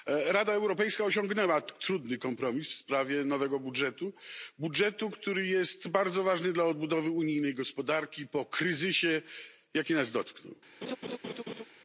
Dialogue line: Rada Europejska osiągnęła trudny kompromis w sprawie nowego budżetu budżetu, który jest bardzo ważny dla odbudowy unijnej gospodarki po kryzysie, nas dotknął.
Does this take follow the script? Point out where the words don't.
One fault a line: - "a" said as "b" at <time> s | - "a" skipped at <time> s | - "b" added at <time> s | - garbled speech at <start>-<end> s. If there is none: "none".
- "jaki" added at 9.7 s